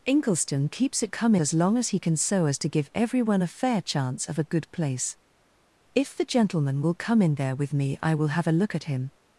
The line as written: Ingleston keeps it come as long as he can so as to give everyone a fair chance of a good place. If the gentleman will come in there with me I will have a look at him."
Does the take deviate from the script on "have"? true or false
false